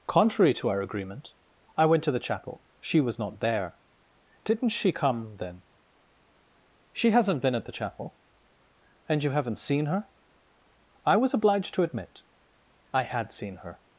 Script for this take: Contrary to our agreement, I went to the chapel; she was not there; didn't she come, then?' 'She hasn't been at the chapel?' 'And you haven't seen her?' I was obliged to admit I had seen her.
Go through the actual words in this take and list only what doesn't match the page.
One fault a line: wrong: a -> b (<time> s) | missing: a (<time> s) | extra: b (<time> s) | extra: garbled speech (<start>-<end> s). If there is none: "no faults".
no faults